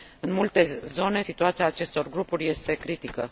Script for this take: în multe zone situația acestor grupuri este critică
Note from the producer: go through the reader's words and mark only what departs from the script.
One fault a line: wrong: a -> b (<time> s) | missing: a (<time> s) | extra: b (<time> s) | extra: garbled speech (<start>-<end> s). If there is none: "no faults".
no faults